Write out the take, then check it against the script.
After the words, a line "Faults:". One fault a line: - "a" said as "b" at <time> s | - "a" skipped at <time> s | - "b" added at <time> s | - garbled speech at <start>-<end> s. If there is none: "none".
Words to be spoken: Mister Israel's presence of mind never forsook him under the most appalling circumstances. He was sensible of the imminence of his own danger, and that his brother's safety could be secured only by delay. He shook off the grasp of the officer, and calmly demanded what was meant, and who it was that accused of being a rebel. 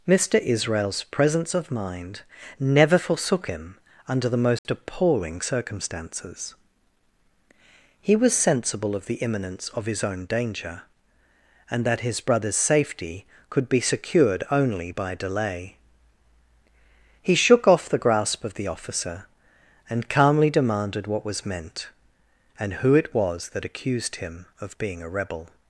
Mister Israel's presence of mind never forsook him under the most appalling circumstances. He was sensible of the imminence of his own danger, and that his brother's safety could be secured only by delay. He shook off the grasp of the officer, and calmly demanded what was meant, and who it was that accused him of being a rebel.
Faults:
- "him" added at 24.2 s